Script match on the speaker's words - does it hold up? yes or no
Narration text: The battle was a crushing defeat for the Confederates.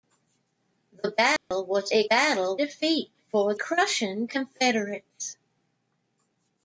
no